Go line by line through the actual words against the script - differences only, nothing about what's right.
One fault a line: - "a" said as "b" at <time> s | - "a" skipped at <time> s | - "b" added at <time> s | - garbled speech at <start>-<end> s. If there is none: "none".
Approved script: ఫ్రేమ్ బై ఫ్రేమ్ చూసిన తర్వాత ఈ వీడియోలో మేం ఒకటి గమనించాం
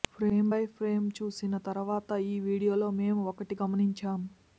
none